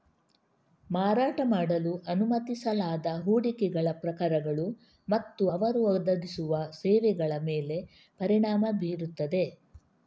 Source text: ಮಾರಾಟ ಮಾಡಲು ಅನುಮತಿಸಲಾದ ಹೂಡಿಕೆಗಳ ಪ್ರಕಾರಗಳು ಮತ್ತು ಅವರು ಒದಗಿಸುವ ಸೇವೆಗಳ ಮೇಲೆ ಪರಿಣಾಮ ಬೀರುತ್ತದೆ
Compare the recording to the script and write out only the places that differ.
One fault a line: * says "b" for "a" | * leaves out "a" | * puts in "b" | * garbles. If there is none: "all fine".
all fine